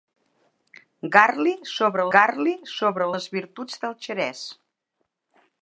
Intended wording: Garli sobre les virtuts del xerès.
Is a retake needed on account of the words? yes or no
yes